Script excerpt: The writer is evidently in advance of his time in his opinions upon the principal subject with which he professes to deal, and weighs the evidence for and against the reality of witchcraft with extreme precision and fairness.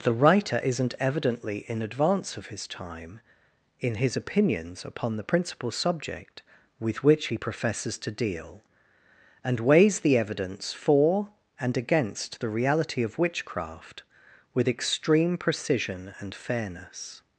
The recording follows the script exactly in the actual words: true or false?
false